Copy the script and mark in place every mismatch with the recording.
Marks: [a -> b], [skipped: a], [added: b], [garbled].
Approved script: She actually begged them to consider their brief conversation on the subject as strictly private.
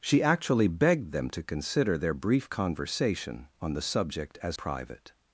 She actually begged them to consider their brief conversation on the subject as [skipped: strictly] private.